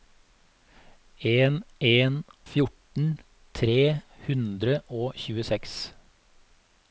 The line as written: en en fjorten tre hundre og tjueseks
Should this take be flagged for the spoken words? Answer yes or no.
no